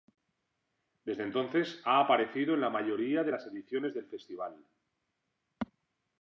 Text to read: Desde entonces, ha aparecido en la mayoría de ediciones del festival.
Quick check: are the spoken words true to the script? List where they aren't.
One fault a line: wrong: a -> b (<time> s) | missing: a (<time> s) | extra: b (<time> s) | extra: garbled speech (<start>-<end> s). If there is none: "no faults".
extra: las (3.3 s)